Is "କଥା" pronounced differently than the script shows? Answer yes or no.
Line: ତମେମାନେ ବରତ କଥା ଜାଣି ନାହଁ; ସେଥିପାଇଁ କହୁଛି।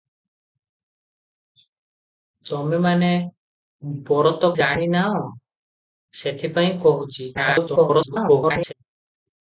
yes